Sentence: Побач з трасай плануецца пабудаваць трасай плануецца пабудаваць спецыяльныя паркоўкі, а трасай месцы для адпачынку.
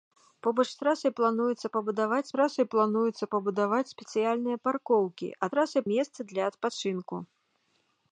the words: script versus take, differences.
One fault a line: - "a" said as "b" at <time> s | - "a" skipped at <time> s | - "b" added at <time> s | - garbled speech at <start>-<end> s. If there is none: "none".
none